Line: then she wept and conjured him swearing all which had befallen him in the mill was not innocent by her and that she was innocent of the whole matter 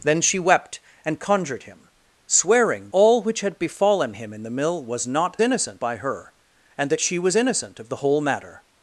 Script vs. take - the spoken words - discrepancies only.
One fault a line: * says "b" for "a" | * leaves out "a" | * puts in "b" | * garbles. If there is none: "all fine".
all fine